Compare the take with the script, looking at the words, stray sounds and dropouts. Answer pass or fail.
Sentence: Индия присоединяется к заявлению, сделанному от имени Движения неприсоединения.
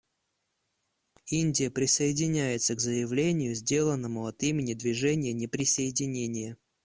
pass